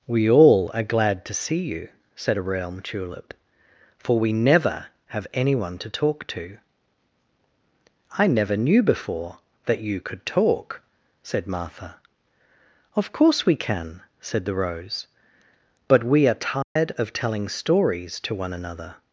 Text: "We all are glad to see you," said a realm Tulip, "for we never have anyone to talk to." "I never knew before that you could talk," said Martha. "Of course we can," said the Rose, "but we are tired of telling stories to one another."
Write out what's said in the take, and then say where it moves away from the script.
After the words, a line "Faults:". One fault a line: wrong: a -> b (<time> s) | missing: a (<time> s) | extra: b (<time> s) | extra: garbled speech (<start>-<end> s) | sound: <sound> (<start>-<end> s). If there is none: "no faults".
"We all are glad to see you," said a realm Tulip, "for we never have anyone to talk to." "I never knew before that you could talk," said Martha. "Of course we can," said the Rose, "but we are tired of telling stories to one another."
Faults:
sound: dropout (16.6-16.8 s)